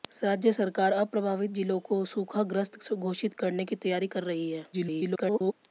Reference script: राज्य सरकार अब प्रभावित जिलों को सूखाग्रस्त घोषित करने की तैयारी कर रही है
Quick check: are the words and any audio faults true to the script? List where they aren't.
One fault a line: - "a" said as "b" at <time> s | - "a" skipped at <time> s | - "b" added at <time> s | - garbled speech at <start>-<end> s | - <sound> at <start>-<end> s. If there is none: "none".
- garbled speech at 4.7-5.5 s